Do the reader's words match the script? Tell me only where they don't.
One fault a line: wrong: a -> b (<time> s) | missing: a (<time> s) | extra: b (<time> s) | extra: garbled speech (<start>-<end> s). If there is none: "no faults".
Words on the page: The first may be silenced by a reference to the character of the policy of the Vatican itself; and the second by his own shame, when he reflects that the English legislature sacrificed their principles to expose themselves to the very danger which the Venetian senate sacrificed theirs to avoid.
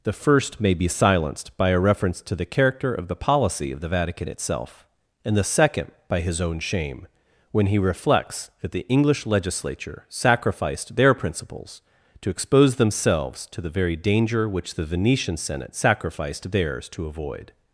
no faults